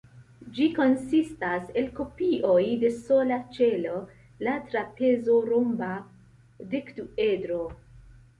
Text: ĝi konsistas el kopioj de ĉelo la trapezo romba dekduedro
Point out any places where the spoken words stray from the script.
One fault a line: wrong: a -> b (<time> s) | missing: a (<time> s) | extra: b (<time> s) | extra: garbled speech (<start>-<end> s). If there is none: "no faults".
extra: sola (3.0 s)